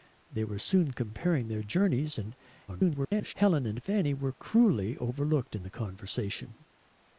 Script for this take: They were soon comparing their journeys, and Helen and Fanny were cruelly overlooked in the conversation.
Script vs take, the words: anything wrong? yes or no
yes